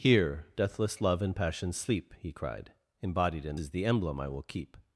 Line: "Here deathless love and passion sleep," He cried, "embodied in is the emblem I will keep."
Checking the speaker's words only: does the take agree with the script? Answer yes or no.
yes